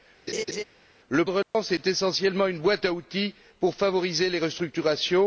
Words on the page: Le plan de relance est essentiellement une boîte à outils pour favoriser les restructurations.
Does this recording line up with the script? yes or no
no